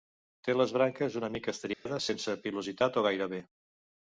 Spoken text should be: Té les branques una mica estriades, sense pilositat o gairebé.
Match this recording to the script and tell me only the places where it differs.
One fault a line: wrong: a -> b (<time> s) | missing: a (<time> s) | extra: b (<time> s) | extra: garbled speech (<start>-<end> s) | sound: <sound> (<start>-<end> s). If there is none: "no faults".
sound: dropout (1.7-1.9 s)